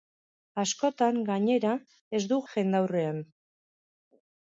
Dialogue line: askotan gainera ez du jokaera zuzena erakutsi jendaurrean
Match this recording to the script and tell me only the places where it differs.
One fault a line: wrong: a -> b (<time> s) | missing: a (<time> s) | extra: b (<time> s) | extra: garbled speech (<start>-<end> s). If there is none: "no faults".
missing: jokaera zuzena erakutsi (2.4 s)